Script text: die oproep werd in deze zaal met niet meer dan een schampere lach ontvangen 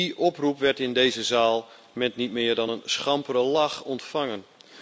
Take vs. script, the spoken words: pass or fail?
pass